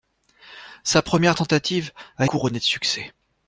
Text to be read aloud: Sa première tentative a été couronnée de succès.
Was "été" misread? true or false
true